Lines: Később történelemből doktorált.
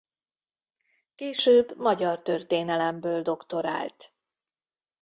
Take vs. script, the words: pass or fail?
fail